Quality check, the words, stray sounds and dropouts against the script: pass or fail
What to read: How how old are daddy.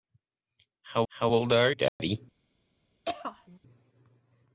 fail